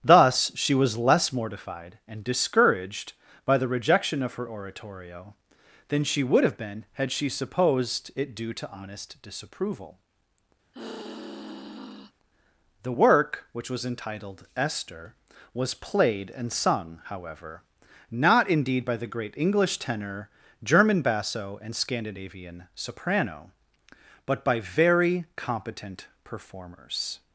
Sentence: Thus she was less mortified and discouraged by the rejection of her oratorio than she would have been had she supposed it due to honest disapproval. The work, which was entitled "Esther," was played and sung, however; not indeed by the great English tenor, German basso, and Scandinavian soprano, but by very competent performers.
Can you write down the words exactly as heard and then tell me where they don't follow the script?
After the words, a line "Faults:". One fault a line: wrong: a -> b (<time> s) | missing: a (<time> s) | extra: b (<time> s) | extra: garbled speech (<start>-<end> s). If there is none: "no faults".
Thus she was less mortified and discouraged by the rejection of her oratorio than she would have been had she supposed it due to honest disapproval. The work, which was entitled "Esther," was played and sung, however; not indeed by the great English tenor, German basso, and Scandinavian soprano, but by very competent performers.
Faults:
no faults